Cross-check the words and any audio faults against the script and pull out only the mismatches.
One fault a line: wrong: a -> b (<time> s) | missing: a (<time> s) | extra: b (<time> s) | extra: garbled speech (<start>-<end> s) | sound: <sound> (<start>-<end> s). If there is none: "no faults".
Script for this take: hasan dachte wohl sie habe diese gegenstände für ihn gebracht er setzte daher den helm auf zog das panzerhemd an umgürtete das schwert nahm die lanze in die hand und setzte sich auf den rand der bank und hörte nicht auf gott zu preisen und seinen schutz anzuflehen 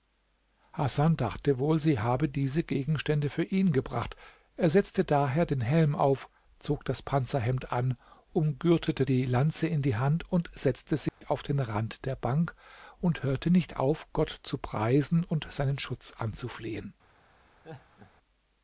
missing: das schwert nahm (9.1 s)
sound: dropout (11.1-11.2 s)
sound: laugh (17.6-18.1 s)